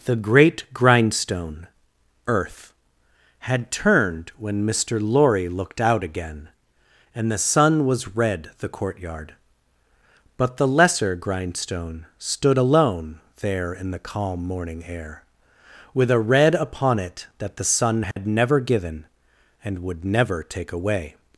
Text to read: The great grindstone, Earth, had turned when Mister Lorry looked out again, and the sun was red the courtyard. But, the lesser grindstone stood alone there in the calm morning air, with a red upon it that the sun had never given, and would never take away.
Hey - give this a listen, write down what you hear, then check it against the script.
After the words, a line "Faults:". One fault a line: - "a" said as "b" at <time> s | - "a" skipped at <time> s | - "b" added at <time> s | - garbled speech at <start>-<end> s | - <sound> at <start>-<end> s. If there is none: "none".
The great grindstone, Earth, had turned when Mister Lorry looked out again, and the sun was red the courtyard. But, the lesser grindstone stood alone there in the calm morning air, with a red upon it that the sun had never given, and would never take away.
Faults:
- dropout at 18.1-18.2 s